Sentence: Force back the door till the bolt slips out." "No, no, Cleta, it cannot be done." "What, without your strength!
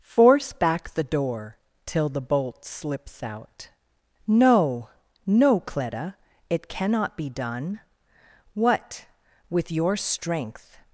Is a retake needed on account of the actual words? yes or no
yes